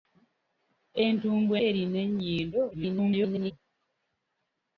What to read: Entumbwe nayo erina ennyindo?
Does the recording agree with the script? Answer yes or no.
no